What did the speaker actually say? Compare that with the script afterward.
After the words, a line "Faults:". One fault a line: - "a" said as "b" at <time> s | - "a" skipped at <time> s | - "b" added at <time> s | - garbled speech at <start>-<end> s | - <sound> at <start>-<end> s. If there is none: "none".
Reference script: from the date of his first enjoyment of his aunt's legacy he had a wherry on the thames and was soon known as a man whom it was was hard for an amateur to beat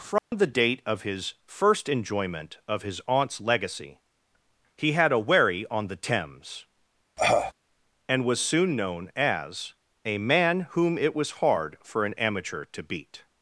from the date of his first enjoyment of his aunt's legacy he had a wherry on the thames and was soon known as a man whom it was hard for an amateur to beat
Faults:
- dropout at 0.2-0.3 s
- cough at 7.2-7.5 s
- "was" skipped at 11.4 s